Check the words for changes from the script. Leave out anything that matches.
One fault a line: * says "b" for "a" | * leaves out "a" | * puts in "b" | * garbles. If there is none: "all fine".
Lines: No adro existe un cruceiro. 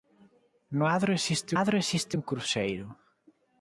* puts in "adro existe"